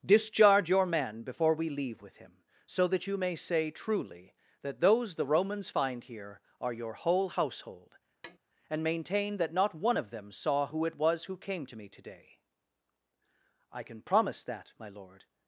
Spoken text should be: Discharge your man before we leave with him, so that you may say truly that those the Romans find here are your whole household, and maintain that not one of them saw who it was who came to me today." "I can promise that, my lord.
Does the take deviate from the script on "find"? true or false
false